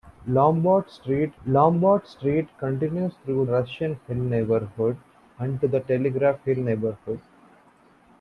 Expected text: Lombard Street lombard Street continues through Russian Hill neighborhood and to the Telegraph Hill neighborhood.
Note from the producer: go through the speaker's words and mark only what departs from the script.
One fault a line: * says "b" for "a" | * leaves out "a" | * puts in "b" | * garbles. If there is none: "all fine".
all fine